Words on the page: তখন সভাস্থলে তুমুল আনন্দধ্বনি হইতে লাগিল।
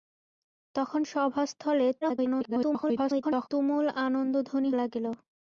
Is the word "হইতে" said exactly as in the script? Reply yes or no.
no